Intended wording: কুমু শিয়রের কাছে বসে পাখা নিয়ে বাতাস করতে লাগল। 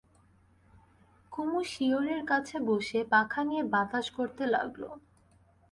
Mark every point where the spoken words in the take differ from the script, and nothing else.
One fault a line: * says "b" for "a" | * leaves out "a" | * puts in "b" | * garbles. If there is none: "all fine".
all fine